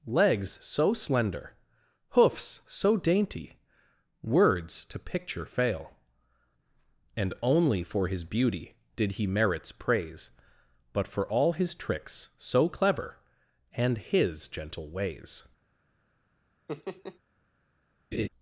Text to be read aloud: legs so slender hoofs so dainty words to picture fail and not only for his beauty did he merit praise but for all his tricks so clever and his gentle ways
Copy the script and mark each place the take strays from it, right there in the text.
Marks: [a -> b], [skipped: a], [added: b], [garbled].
legs so slender hoofs so dainty words to picture fail and [skipped: not] only for his beauty did he [merit -> merits] praise but for all his tricks so clever and his gentle ways